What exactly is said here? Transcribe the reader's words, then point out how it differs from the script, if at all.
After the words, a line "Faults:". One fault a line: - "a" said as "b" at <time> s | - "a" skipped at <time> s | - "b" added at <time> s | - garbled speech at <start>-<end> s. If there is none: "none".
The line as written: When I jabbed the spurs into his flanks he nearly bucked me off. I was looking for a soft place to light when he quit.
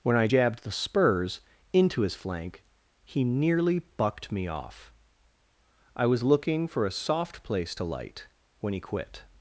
When I jabbed the spurs into his flank he nearly bucked me off. I was looking for a soft place to light when he quit.
Faults:
- "flanks" said as "flank" at 2.1 s